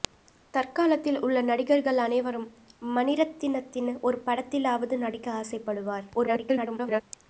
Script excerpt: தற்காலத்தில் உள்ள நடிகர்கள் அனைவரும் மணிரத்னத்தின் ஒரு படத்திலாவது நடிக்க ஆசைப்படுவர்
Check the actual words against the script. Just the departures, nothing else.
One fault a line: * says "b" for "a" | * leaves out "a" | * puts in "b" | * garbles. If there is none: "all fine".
* garbles